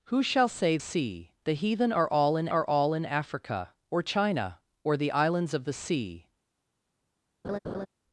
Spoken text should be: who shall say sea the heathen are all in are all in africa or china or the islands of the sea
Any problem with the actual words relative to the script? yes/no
no